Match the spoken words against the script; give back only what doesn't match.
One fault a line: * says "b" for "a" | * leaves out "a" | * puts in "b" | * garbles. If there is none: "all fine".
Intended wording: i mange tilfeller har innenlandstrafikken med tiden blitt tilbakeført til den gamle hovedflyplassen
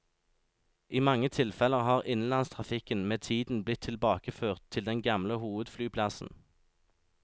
all fine